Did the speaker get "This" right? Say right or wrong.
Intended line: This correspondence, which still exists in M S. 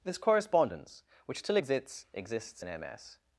right